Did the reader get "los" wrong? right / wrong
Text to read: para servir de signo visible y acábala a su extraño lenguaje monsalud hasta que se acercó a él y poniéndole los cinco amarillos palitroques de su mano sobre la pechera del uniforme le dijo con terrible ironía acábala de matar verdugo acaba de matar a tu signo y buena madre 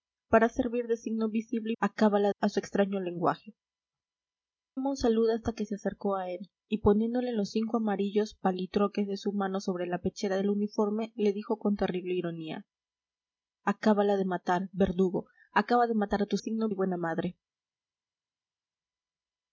right